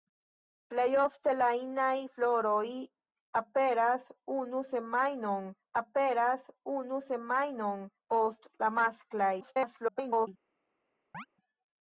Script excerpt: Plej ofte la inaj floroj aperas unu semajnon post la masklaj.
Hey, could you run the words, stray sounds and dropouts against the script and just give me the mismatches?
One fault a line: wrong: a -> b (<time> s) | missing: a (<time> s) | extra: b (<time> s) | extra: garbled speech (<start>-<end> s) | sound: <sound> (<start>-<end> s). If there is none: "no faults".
extra: aperas unu semajnon (5.8 s)
extra: garbled speech (9.4-10.3 s)
sound: chirp (11.1-11.3 s)